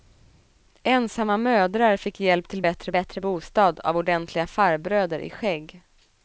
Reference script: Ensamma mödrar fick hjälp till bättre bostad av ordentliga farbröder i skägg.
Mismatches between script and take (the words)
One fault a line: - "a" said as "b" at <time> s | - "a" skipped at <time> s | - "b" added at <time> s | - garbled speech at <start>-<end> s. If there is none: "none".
- "bättre" added at 2.9 s